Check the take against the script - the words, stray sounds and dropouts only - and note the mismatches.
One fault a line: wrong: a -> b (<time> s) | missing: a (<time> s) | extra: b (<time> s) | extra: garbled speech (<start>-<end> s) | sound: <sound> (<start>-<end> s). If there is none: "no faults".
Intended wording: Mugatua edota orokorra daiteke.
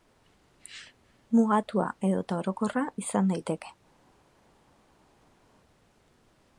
extra: izan (3.1 s)